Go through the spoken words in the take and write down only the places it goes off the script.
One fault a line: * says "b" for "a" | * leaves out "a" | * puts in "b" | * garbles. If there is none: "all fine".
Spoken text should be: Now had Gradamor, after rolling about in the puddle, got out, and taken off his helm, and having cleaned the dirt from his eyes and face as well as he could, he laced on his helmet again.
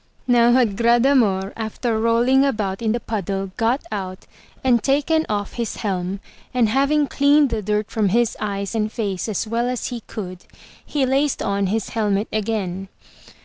all fine